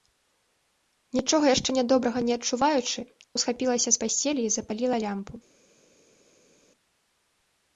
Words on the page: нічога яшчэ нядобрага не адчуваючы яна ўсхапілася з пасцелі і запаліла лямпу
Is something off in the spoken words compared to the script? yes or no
yes